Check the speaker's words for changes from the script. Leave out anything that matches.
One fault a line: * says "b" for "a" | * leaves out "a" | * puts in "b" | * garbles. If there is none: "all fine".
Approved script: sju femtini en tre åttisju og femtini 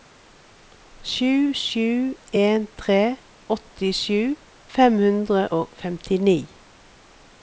* says "sju" for "femtini"
* puts in "fem hundre"